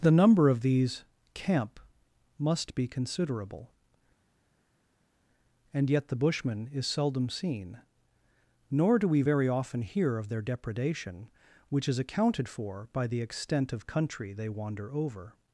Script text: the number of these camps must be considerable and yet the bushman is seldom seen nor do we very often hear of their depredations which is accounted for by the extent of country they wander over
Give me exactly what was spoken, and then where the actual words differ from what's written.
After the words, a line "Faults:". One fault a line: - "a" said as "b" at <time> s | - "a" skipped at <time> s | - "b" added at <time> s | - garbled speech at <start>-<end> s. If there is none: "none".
the number of these camp must be considerable and yet the bushman is seldom seen nor do we very often hear of their depredation which is accounted for by the extent of country they wander over
Faults:
- "camps" said as "camp" at 1.4 s
- "depredations" said as "depredation" at 10.4 s